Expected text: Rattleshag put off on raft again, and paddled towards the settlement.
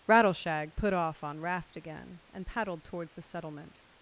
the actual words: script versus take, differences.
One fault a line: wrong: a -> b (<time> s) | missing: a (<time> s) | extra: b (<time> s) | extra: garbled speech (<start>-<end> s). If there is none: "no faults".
no faults